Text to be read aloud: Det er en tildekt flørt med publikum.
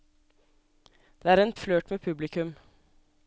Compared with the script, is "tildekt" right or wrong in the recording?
wrong